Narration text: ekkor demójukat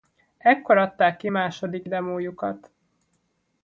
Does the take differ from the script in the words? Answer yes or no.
yes